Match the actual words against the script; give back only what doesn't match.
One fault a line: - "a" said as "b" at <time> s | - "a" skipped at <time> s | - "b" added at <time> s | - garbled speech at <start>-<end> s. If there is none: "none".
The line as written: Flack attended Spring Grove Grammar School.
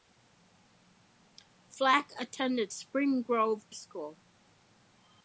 - "Grammar" skipped at 3.7 s